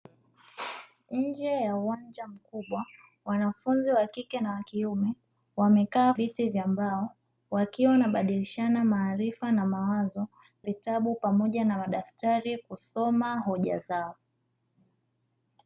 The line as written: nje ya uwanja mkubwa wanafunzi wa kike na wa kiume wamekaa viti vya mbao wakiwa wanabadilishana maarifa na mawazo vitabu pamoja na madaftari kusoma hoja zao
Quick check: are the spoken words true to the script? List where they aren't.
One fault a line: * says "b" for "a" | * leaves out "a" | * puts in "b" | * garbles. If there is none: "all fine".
all fine